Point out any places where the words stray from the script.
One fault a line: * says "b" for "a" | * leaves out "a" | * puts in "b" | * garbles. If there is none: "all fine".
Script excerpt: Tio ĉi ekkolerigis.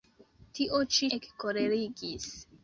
all fine